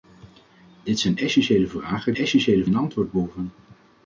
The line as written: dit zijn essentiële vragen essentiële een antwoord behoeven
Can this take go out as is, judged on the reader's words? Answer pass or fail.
pass